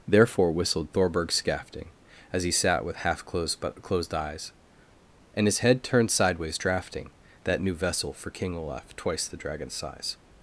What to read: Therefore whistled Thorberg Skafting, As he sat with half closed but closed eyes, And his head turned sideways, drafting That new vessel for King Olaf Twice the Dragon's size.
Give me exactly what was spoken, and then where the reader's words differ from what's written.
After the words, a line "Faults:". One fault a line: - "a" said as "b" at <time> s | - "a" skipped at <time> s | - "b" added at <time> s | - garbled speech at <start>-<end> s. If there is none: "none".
Therefore whistled Thorberg Skafting, As he sat with half closed but closed eyes, And his head turned sideways, drafting That new vessel for King Olaf Twice the Dragon's size.
Faults:
none